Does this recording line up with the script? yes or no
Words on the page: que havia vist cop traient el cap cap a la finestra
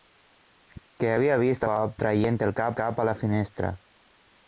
yes